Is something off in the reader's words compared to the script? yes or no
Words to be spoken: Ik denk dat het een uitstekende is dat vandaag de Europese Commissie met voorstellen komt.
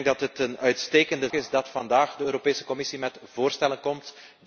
no